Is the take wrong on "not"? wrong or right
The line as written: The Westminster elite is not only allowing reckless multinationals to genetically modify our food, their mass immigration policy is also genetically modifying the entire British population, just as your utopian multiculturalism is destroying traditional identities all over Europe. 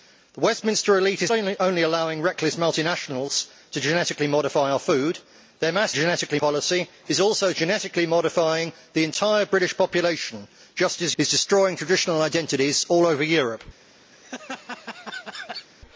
wrong